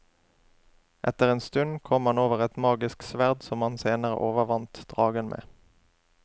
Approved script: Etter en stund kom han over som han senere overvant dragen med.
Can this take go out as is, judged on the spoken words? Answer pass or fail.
fail